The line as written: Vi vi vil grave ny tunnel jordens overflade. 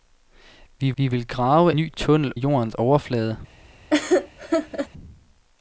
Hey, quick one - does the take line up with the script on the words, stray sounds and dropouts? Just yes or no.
no